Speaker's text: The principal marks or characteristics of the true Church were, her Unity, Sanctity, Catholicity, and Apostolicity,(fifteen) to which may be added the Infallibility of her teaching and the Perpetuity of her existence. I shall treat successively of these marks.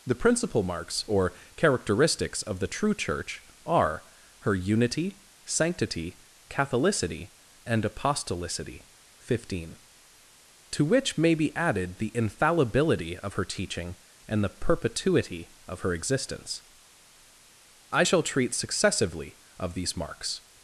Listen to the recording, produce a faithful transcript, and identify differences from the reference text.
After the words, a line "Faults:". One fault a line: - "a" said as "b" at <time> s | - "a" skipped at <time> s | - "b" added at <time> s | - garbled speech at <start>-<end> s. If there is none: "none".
The principal marks or characteristics of the true Church are, her Unity, Sanctity, Catholicity, and Apostolicity,(fifteen) to which may be added the Infallibility of her teaching and the Perpetuity of her existence. I shall treat successively of these marks.
Faults:
- "were" said as "are" at 3.6 s